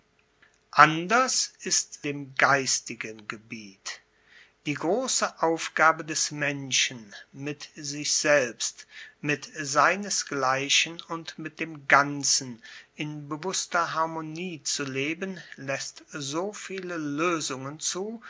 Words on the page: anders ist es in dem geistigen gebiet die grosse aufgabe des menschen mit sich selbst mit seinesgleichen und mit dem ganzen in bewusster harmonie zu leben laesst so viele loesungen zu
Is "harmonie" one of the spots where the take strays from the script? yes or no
no